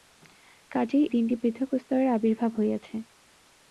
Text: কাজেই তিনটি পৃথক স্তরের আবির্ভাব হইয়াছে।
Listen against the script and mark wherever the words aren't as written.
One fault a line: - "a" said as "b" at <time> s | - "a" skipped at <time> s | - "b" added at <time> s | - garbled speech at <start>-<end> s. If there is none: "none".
none